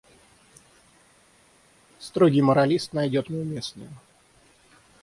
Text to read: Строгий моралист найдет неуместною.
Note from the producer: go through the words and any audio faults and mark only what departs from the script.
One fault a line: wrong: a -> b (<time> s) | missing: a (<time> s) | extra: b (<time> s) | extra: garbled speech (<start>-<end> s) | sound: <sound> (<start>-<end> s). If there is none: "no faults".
no faults